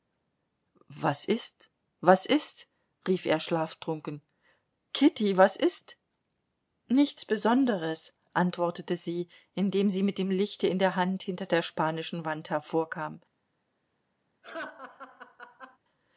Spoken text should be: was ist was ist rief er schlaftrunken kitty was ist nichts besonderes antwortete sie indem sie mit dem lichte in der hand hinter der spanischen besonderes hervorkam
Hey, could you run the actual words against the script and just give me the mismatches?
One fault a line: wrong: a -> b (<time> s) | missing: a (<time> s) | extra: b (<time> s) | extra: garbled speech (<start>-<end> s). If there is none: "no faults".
wrong: besonderes -> wand (12.2 s)